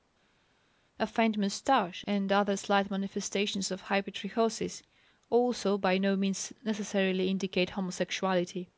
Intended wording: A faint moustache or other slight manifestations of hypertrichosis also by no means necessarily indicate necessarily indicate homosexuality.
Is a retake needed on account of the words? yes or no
yes